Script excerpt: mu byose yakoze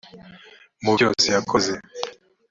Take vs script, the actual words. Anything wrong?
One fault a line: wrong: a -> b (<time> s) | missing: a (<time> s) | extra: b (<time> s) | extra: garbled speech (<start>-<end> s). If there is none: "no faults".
no faults